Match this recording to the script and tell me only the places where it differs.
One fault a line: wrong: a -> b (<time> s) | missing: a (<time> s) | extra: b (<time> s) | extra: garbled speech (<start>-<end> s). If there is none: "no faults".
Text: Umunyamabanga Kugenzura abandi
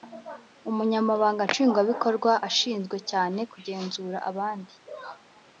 extra: Nshingwabikorwa ashinzwe cyane (1.5 s)